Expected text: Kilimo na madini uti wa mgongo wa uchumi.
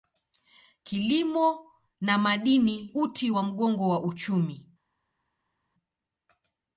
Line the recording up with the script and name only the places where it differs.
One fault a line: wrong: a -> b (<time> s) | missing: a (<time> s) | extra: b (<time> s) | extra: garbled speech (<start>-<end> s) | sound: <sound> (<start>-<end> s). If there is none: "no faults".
no faults